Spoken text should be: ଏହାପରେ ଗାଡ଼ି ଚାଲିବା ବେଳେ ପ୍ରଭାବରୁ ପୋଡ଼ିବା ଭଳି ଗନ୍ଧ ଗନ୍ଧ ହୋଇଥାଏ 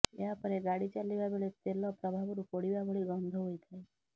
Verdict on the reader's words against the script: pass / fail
fail